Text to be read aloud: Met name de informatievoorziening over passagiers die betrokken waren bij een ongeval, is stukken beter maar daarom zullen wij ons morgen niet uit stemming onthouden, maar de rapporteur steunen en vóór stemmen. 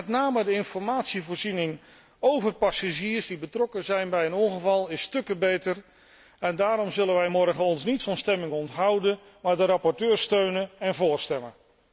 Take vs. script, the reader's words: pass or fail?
fail